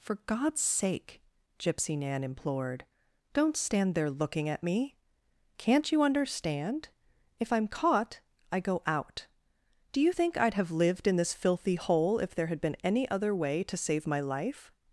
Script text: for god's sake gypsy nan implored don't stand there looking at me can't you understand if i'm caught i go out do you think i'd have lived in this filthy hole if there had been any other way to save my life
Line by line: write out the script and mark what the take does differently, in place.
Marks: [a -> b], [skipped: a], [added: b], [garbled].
for god's sake gypsy nan implored don't stand there looking at me can't you understand if i'm caught i go out do you think i'd have lived in this filthy hole if there had been any other way to save my life